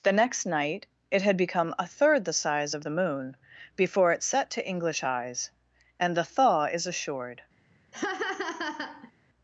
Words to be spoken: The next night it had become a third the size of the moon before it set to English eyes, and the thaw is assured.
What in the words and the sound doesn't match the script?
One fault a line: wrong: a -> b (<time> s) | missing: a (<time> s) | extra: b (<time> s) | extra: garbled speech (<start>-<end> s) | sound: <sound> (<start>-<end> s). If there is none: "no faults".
sound: laugh (7.9-9.1 s)